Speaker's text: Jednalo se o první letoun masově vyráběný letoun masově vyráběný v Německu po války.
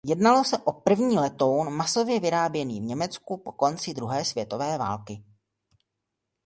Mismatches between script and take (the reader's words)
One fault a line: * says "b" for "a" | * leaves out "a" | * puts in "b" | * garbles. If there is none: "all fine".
* says "v Německu po konci druhé světové" for "letoun masově vyráběný v Německu po"